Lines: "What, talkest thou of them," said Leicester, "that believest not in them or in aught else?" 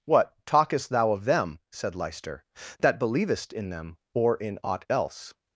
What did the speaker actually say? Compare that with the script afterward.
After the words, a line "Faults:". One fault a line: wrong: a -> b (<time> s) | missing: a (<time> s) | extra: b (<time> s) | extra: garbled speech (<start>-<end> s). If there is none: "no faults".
"What, talkest thou of them," said Leicester, "that believest in them or in aught else?"
Faults:
missing: not (3.5 s)